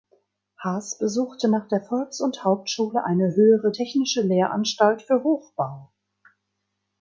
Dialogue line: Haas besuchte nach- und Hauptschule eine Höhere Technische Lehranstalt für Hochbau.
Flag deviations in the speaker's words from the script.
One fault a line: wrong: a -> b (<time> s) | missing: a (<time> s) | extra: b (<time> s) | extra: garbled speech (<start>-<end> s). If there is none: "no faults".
extra: der Volks (1.7 s)